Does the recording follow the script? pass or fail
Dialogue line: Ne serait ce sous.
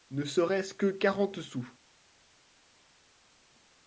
fail